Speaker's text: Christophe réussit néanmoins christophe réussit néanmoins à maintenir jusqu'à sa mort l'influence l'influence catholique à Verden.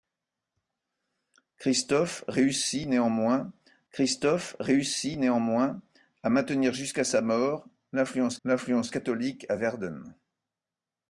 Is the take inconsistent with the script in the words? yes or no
no